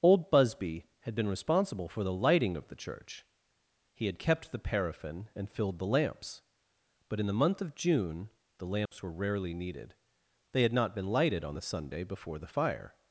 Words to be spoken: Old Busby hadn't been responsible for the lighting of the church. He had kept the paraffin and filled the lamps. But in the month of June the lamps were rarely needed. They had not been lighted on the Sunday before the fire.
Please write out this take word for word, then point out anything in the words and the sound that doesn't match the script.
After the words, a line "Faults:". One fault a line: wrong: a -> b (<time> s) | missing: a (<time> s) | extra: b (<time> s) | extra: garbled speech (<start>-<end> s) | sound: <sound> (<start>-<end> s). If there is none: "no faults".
Old Busby had been responsible for the lighting of the church. He had kept the paraffin and filled the lamps. But in the month of June the lamps were rarely needed. They had not been lighted on the Sunday before the fire.
Faults:
wrong: hadn't -> had (1.0 s)
sound: dropout (8.9-8.9 s)